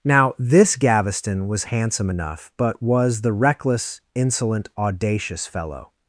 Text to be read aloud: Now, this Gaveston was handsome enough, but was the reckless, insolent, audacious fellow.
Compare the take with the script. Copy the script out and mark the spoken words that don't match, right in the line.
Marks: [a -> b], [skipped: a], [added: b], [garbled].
Now, this Gaveston was handsome enough, but was the reckless, insolent, audacious fellow.